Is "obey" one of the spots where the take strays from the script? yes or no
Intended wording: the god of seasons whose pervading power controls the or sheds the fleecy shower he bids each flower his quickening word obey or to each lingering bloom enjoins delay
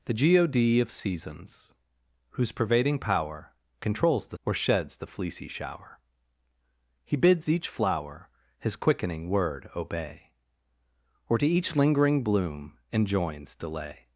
no